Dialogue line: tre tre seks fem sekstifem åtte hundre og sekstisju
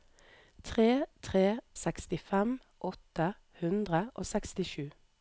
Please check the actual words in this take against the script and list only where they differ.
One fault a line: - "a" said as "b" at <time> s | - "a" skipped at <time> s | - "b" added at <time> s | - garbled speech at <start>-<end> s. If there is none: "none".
- "seks fem" skipped at 1.6 s